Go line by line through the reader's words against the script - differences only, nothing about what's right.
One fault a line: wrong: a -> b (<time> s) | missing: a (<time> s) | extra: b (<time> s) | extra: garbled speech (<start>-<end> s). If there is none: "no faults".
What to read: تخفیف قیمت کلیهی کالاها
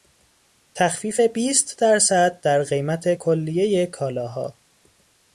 extra: بیست درصد در (1.2 s)